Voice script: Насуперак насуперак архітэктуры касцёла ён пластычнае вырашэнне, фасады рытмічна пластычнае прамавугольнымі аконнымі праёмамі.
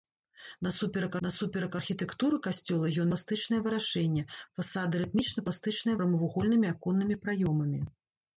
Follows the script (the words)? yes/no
yes